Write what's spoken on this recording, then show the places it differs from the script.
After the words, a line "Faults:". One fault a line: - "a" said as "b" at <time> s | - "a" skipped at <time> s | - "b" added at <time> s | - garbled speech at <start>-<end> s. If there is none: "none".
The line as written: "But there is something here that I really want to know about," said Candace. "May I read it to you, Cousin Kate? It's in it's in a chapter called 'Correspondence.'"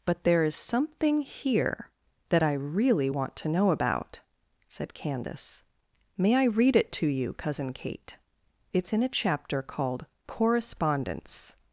"But there is something here that I really want to know about," said Candace. "May I read it to you, Cousin Kate? It's in a chapter called 'Correspondence.'"
Faults:
- "it's in" skipped at 9.0 s